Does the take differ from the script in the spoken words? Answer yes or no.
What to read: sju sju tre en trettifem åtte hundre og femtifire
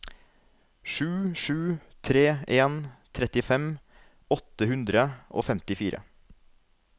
no